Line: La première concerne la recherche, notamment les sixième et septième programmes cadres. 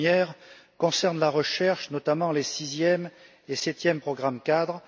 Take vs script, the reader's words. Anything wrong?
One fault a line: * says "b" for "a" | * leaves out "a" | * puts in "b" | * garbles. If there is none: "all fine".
all fine